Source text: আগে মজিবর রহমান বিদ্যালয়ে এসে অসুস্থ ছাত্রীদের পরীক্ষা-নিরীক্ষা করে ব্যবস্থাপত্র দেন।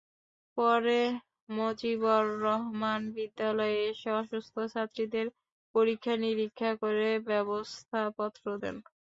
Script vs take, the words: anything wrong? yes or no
yes